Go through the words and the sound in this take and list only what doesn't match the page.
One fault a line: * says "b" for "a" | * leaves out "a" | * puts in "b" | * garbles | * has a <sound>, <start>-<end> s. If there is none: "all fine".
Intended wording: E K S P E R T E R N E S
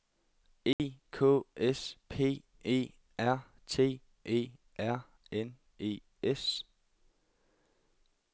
* has a dropout, 0.7-0.8 s